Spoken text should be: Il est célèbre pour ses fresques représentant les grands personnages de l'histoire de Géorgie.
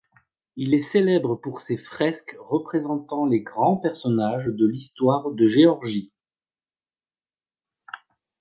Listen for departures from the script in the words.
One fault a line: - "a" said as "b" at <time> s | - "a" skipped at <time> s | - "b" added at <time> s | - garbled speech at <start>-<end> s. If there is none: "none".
none